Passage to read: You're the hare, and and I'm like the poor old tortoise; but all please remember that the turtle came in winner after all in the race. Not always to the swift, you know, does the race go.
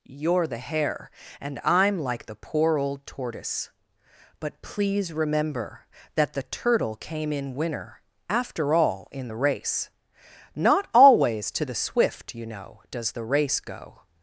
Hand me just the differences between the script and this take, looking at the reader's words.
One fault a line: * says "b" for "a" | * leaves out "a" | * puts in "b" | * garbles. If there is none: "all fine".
* leaves out "and"
* leaves out "all"